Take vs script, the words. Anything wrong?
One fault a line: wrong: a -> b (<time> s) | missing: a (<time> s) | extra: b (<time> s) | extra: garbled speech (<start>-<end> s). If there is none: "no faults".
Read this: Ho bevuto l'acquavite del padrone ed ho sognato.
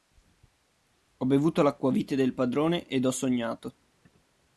no faults